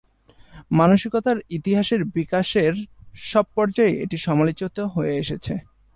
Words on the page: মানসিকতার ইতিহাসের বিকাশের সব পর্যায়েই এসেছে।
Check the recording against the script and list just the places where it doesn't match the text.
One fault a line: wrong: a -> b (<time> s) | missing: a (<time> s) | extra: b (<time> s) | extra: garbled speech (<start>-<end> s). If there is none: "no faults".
extra: এটি সমালোচিত হয়ে (4.0 s)